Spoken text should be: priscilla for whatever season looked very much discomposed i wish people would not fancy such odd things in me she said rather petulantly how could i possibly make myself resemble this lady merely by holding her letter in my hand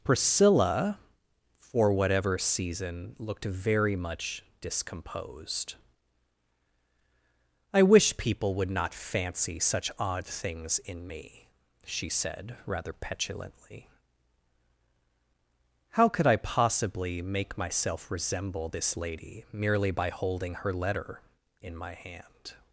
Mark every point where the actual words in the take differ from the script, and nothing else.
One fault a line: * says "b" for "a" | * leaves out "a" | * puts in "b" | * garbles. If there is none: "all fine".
all fine